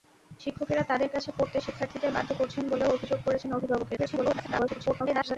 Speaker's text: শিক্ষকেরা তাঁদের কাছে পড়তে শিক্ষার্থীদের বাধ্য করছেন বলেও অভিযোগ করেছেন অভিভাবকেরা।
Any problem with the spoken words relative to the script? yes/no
yes